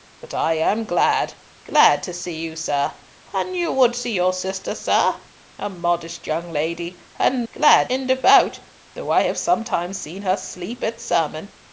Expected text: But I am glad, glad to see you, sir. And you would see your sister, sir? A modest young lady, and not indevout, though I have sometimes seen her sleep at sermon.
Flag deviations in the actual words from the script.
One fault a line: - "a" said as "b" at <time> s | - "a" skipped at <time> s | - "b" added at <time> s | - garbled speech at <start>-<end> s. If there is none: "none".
- "not" said as "glad" at 7.5 s